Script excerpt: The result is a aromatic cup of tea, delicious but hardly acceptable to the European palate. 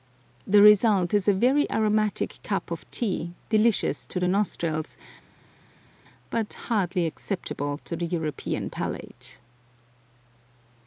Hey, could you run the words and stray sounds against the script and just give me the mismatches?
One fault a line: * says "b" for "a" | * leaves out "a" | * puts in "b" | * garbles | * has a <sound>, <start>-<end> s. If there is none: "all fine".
* puts in "very"
* puts in "to the nostrils"